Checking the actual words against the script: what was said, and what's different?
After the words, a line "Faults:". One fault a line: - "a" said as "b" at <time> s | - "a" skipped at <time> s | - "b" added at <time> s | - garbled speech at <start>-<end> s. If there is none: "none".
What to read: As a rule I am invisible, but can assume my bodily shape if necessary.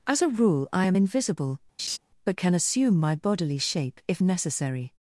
As a rule I am invisible, but can assume my bodily shape if necessary.
Faults:
none